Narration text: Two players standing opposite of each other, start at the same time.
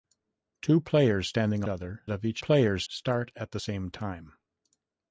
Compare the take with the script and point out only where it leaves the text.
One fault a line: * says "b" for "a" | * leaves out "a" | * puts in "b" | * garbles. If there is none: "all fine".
* says "other" for "opposite"
* says "players" for "other"